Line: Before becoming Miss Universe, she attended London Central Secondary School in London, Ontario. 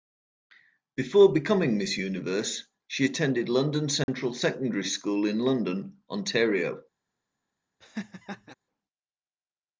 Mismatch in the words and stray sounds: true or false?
true